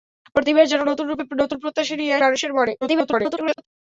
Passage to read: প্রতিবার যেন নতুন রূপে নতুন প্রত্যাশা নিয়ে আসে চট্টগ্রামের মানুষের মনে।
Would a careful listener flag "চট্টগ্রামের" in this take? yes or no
yes